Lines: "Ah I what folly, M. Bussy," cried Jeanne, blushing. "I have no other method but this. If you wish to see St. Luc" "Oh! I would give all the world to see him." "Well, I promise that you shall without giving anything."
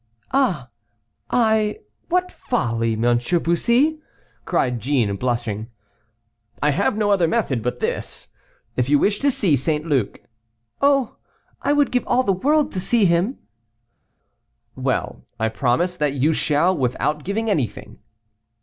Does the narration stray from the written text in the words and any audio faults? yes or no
no